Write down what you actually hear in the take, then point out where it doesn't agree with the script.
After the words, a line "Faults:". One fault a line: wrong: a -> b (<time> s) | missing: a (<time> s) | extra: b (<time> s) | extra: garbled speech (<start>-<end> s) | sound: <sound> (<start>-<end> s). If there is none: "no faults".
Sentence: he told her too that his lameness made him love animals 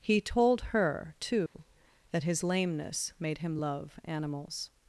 he told her too that his lameness made him love animals
Faults:
sound: dropout (1.5-1.5 s)